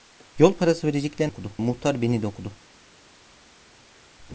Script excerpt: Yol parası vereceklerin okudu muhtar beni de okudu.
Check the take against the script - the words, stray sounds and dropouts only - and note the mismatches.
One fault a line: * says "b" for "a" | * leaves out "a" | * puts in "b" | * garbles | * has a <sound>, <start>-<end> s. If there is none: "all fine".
all fine